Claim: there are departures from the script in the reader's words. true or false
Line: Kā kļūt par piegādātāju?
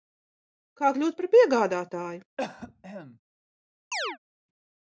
false